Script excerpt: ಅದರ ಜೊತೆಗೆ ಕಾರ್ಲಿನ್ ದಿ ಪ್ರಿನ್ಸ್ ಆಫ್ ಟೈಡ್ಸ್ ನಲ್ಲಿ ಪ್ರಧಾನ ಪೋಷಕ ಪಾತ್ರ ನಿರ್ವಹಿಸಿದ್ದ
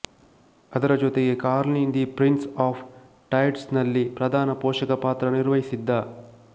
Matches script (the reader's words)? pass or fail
pass